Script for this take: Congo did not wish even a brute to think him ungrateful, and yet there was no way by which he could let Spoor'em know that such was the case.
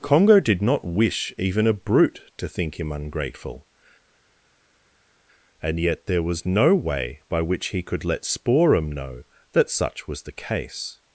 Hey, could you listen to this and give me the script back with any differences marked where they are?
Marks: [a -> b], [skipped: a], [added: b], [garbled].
Congo did not wish even a brute to think him ungrateful, and yet there was no way by which he could let Spoor'em know that such was the case.